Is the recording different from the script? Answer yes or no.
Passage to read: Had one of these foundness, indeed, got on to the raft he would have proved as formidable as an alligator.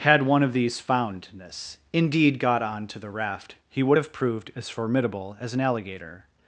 no